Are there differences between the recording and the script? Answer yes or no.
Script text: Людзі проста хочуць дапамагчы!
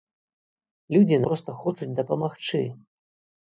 no